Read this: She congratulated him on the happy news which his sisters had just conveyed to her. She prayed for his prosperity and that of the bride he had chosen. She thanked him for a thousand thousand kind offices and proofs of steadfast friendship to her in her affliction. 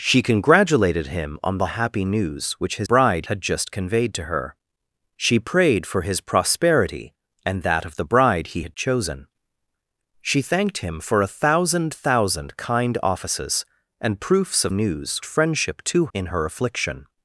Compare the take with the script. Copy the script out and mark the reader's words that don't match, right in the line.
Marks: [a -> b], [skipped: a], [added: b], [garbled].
She congratulated him on the happy news which his [sisters -> bride] had just conveyed to her. She prayed for his prosperity and that of the bride he had chosen. She thanked him for a thousand thousand kind offices and proofs of [steadfast -> news] friendship to [skipped: her] in her affliction.